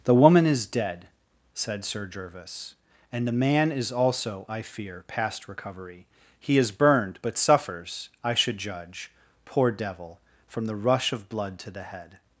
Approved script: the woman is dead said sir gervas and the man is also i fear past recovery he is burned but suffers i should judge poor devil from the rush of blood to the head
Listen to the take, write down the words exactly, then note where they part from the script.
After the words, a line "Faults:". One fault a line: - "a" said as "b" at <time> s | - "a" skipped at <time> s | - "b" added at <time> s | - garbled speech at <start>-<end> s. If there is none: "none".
the woman is dead said sir gervas and the man is also i fear past recovery he is burned but suffers i should judge poor devil from the rush of blood to the head
Faults:
none